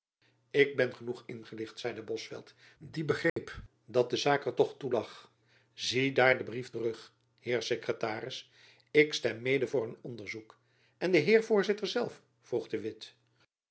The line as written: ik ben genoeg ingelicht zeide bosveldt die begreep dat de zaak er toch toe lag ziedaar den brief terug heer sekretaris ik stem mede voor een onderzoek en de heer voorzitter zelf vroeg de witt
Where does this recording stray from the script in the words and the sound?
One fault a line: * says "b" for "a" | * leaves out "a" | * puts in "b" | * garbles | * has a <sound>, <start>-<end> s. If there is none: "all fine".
* has a dropout, 3.3-3.4 s